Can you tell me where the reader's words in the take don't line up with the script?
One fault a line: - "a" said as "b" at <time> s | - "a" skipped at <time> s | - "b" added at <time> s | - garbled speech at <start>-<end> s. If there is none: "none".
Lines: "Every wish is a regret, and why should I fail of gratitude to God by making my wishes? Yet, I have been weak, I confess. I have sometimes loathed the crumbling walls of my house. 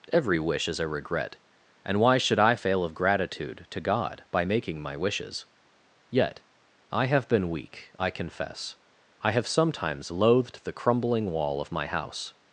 - "walls" said as "wall" at 11.3 s